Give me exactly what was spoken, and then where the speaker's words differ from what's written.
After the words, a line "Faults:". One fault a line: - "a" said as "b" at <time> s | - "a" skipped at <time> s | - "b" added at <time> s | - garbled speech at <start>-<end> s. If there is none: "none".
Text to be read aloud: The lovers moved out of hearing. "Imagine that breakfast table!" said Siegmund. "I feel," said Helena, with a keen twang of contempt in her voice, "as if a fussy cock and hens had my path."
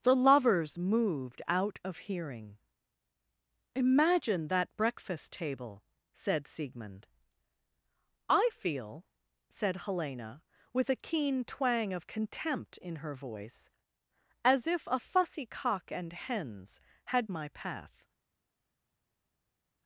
The lovers moved out of hearing. "Imagine that breakfast table!" said Siegmund. "I feel," said Helena, with a keen twang of contempt in her voice, "as if a fussy cock and hens had my path."
Faults:
none